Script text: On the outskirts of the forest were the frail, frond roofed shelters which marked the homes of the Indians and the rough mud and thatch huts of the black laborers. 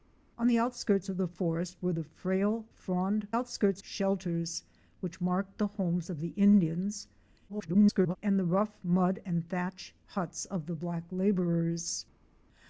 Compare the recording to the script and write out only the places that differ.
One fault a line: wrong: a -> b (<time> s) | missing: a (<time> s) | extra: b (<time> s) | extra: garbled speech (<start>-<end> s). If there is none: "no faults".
wrong: roofed -> outskirts (3.3 s)
extra: garbled speech (7.5-8.2 s)